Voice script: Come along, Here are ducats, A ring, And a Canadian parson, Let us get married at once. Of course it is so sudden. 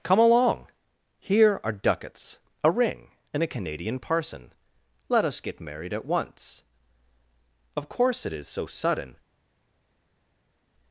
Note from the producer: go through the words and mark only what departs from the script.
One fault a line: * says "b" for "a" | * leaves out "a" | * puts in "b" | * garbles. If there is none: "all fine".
all fine